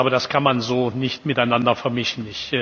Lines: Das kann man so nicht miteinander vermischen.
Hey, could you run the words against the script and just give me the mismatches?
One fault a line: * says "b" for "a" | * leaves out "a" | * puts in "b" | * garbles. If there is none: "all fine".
all fine